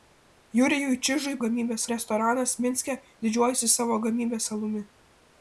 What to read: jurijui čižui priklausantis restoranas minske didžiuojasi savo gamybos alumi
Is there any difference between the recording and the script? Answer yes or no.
yes